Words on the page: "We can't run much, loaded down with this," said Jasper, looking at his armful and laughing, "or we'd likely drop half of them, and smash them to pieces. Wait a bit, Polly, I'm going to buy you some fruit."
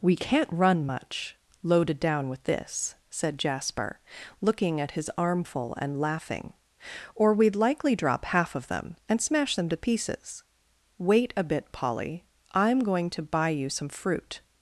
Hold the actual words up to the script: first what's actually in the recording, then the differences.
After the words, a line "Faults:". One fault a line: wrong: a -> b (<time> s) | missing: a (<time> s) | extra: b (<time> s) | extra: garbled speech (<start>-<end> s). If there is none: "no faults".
"We can't run much, loaded down with this," said Jasper, looking at his armful and laughing, "or we'd likely drop half of them, and smash them to pieces. Wait a bit, Polly, I'm going to buy you some fruit."
Faults:
no faults